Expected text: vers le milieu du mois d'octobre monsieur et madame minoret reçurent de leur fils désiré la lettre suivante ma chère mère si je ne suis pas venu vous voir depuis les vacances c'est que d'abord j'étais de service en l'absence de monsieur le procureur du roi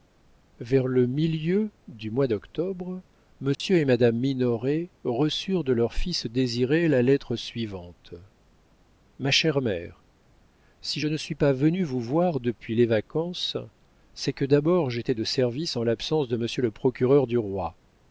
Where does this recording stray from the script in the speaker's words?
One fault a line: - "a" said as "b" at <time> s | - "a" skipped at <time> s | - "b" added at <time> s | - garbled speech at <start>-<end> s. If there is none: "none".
none